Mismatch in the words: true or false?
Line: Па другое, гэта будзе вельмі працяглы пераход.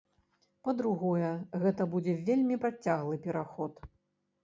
false